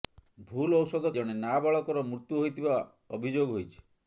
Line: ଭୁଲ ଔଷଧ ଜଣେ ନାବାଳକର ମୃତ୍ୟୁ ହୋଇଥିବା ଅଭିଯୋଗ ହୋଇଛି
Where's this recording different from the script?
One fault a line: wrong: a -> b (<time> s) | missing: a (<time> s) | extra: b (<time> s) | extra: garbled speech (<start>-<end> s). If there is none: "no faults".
no faults